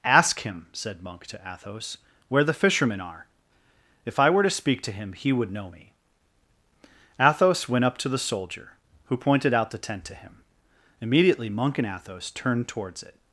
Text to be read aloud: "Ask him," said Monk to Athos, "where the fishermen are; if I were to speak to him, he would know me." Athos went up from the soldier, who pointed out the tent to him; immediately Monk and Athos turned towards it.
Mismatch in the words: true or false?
true